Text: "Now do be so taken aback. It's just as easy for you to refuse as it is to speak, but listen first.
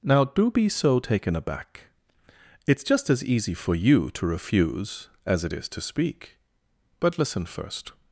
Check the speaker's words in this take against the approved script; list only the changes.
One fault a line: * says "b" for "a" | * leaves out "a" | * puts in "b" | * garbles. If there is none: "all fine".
all fine